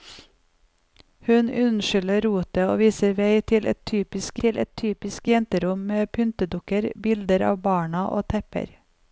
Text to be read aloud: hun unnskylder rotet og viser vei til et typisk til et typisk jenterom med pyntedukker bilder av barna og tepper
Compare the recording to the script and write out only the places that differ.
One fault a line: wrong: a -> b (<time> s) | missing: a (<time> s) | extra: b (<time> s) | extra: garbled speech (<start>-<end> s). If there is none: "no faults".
no faults